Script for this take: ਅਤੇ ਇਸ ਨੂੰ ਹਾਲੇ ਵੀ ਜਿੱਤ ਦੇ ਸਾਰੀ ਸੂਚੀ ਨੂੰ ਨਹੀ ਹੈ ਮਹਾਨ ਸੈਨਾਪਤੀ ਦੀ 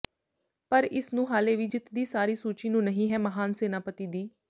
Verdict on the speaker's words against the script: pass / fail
fail